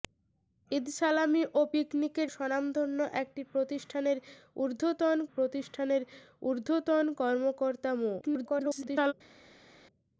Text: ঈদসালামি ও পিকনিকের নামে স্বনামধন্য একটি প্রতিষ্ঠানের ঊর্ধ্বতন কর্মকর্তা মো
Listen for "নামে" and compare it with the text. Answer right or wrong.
wrong